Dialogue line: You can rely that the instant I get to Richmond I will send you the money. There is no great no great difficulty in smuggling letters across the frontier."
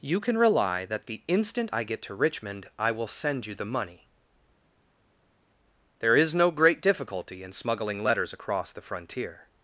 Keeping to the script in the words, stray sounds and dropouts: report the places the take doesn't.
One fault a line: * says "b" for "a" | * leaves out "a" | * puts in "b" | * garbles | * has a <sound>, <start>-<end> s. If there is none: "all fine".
* leaves out "no great"